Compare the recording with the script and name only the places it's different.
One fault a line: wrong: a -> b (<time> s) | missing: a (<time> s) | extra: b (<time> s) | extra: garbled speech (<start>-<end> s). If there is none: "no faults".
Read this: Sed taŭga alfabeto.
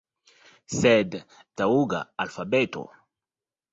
no faults